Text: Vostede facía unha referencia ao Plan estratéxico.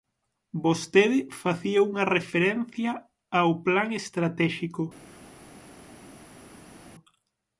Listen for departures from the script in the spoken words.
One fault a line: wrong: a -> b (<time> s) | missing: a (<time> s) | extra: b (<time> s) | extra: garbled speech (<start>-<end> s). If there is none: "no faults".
no faults